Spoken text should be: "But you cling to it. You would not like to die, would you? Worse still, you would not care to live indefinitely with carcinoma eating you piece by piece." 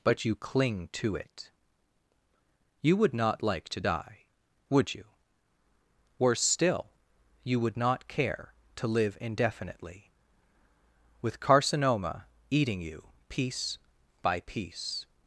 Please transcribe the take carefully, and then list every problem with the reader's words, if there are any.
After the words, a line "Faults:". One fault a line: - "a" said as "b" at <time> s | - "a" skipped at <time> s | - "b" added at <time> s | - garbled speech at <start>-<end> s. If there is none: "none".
"But you cling to it. You would not like to die, would you? Worse still, you would not care to live indefinitely with carcinoma eating you piece by piece."
Faults:
none